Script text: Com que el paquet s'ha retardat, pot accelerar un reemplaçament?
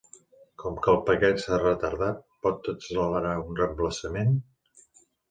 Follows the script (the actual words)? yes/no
yes